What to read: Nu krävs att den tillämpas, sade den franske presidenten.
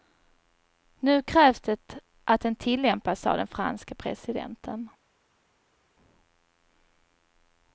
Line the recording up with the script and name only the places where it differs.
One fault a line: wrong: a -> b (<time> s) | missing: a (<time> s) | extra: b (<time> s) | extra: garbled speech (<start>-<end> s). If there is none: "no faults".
extra: det (1.6 s)